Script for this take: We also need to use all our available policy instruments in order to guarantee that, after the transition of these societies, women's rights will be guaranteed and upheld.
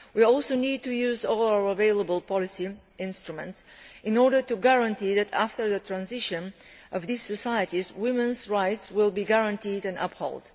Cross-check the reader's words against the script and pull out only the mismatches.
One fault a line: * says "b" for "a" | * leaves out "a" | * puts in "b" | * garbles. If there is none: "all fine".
all fine